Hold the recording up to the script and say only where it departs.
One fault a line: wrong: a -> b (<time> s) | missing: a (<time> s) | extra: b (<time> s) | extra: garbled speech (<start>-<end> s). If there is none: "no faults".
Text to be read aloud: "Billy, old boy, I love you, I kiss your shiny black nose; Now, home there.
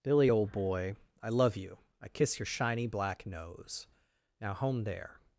no faults